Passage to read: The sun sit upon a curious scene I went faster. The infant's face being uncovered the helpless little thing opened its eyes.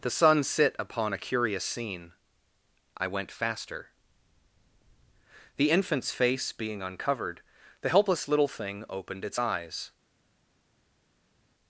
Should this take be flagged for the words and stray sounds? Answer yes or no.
no